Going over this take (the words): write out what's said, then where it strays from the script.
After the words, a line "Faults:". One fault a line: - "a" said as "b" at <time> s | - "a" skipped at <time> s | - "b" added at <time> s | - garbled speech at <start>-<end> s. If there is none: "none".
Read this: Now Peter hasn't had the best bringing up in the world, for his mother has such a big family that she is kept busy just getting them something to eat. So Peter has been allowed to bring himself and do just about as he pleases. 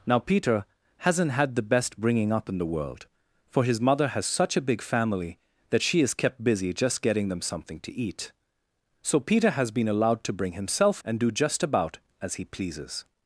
Now Peter hasn't had the best bringing up in the world, for his mother has such a big family that she is kept busy just getting them something to eat. So Peter has been allowed to bring himself and do just about as he pleases.
Faults:
none